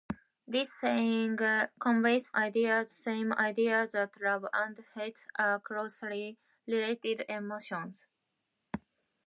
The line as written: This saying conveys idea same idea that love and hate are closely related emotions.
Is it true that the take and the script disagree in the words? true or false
false